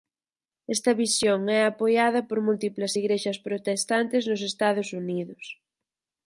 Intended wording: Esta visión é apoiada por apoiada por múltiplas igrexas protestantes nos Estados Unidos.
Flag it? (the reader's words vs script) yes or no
yes